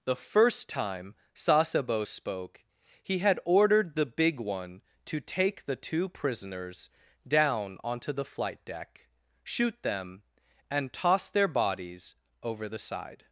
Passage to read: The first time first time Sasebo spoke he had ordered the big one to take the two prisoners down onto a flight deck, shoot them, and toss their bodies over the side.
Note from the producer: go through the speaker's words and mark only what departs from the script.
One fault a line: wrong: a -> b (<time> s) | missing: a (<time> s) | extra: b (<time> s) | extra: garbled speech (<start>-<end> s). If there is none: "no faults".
missing: first time (1.1 s)
wrong: a -> the (8.1 s)